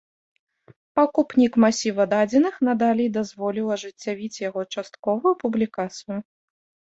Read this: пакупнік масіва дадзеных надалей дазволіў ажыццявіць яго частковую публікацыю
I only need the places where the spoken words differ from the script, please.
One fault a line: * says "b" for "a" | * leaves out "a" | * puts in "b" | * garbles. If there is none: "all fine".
all fine